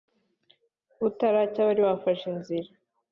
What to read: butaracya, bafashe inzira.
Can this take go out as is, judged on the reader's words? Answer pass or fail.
fail